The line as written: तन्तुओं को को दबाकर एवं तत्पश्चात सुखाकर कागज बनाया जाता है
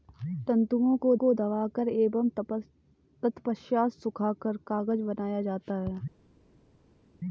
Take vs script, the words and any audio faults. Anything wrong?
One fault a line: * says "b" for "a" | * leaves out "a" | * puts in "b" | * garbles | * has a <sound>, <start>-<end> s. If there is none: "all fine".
all fine